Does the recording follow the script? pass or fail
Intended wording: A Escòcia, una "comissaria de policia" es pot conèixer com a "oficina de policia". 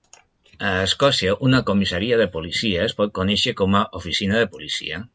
pass